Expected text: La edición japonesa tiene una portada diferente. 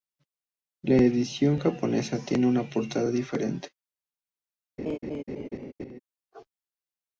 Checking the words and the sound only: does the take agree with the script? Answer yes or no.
no